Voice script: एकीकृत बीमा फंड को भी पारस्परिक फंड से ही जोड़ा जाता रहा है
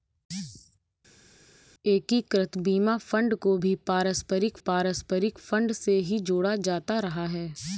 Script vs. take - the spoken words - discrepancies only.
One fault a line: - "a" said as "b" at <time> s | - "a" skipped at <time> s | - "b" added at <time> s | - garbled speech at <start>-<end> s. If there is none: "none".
- "पारस्परिक" added at 4.7 s